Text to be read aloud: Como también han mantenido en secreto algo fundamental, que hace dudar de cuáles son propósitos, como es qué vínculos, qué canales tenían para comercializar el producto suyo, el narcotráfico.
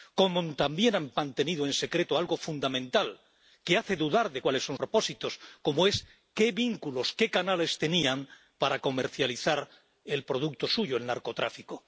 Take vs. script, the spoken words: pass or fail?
pass